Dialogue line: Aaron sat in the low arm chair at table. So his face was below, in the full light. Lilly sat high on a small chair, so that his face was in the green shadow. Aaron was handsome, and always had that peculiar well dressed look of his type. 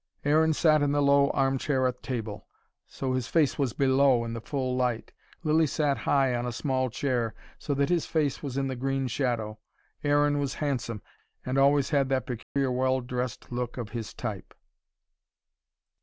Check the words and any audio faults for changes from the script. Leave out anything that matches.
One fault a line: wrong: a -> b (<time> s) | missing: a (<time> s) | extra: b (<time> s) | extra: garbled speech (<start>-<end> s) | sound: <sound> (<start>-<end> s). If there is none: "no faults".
sound: dropout (12.4-12.6 s)